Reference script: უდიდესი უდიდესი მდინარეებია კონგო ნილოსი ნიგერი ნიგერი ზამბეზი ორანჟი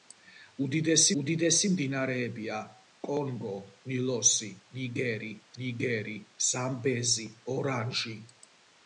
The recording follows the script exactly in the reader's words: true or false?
true